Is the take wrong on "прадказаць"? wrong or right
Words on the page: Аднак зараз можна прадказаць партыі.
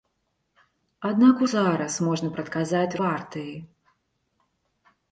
right